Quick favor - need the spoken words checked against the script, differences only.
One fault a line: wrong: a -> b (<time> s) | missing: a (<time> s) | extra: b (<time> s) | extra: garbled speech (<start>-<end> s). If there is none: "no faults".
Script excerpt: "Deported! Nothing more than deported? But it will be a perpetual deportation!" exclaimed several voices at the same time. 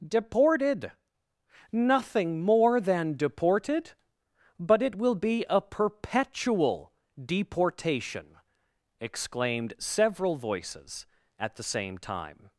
no faults